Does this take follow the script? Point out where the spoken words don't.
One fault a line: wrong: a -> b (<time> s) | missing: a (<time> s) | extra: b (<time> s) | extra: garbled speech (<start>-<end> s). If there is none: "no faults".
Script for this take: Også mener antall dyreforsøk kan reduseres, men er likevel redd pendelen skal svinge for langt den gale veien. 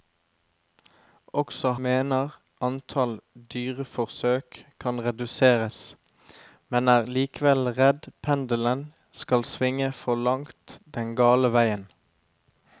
no faults